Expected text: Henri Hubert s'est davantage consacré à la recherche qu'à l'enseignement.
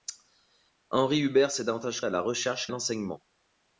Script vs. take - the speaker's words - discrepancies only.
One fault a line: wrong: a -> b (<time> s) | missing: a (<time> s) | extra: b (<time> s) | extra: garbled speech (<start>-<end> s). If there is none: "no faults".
missing: consacré (2.0 s)
missing: qu'à (2.7 s)